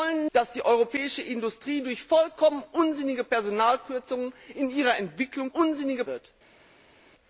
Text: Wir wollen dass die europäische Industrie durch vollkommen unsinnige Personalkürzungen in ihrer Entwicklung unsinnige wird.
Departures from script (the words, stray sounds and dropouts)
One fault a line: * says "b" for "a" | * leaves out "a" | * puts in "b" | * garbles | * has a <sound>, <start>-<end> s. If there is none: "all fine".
all fine